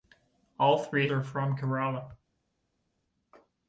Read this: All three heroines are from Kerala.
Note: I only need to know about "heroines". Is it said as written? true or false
false